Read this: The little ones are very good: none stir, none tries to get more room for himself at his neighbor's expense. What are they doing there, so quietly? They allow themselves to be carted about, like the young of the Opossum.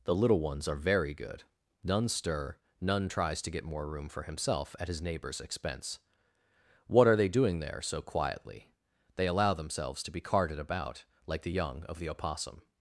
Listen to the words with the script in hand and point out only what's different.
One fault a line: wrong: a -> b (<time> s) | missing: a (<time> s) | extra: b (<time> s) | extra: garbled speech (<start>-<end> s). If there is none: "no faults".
no faults